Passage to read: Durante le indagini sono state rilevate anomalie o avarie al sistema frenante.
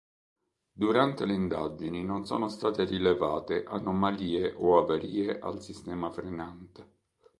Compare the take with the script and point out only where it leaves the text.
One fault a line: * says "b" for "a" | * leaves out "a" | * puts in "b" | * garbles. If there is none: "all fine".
* puts in "non"